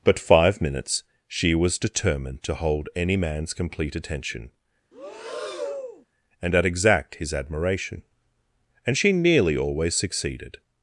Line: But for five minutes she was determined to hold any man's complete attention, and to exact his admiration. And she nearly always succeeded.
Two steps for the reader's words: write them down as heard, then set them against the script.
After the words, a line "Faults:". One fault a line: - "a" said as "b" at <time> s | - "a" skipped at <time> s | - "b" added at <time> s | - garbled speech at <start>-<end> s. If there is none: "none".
But five minutes she was determined to hold any man's complete attention, and at exact his admiration. And she nearly always succeeded.
Faults:
- "for" skipped at 0.2 s
- "to" said as "at" at 6.6 s